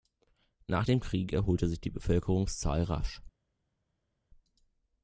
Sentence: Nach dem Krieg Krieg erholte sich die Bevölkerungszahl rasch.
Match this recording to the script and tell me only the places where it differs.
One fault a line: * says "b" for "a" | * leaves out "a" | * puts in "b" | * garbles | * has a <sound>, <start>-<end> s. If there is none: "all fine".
* leaves out "Krieg"